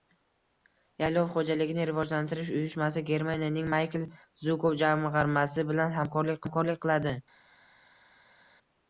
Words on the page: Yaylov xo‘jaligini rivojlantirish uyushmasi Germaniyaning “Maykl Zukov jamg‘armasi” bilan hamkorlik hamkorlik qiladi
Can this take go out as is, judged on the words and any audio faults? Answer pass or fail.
pass